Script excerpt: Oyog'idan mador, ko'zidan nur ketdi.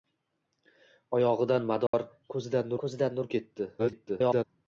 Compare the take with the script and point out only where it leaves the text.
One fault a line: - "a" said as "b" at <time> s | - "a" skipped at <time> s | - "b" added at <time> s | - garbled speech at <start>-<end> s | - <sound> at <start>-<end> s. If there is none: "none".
- dropout at 1.9-1.9 s
- "ko'zidan" added at 2.8 s
- garbled speech at 3.8-4.4 s